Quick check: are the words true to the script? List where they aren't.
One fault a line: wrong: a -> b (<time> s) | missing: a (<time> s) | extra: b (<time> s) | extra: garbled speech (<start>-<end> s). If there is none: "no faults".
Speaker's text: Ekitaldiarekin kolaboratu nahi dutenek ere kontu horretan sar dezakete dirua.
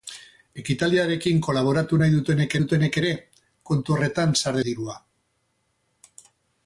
extra: dutenek (2.6 s)
missing: dezakete (4.6 s)